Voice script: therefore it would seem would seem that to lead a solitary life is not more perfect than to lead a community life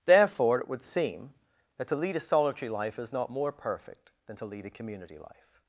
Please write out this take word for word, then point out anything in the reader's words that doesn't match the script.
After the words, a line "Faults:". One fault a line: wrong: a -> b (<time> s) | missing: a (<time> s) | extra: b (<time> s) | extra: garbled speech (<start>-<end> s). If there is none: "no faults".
therefore it would seem that to lead a solitary life is not more perfect than to lead a community life
Faults:
missing: would seem (1.3 s)